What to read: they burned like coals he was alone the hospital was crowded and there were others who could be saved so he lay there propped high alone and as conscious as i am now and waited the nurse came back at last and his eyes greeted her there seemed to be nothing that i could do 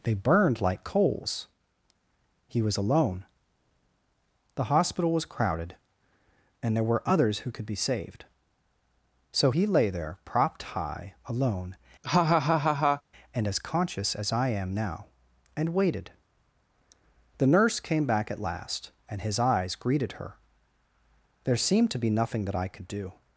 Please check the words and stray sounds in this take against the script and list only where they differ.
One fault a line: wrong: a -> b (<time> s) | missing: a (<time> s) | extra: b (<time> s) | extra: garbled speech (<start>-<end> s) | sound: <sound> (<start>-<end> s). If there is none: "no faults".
sound: laugh (12.0-13.0 s)